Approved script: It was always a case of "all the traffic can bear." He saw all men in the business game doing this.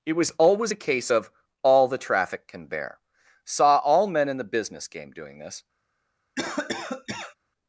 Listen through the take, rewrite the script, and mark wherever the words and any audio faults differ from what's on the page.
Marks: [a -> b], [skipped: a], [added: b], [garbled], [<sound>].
It was always a case of "all the traffic can bear." [skipped: He] saw all men in the business game doing this. [cough]